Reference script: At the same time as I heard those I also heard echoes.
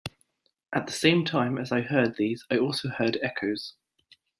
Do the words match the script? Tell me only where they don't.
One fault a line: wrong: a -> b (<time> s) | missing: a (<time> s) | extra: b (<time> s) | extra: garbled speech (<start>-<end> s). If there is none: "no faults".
wrong: those -> these (2.2 s)